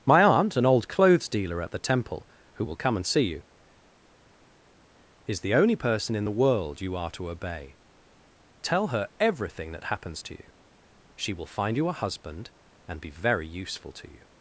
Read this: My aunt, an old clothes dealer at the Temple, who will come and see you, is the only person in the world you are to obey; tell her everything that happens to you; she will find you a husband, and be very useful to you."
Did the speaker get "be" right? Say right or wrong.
right